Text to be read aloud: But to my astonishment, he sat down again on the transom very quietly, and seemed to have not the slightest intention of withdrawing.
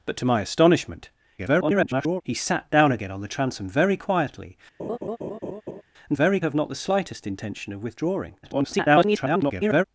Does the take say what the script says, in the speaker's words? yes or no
no